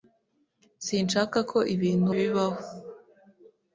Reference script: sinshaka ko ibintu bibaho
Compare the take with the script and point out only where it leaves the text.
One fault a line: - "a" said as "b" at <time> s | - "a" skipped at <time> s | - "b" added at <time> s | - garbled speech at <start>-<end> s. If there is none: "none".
none